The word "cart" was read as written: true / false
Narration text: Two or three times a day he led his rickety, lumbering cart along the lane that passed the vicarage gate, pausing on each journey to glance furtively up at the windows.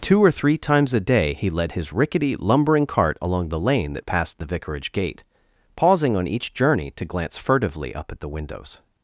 true